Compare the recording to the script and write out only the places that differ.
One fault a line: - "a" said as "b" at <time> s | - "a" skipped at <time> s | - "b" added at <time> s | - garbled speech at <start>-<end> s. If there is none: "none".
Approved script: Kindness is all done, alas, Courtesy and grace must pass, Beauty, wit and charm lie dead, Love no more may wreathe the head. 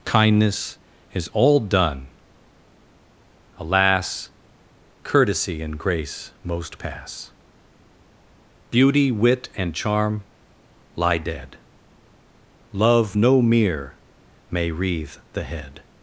- "must" said as "most" at 6.4 s
- "more" said as "mere" at 13.4 s